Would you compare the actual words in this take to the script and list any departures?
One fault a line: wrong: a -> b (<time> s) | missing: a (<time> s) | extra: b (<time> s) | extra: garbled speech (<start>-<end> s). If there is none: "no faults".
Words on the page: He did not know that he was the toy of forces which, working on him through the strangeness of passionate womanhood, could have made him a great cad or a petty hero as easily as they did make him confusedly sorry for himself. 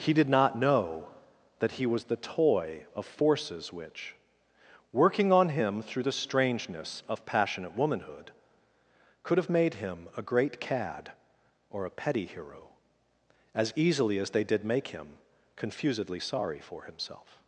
no faults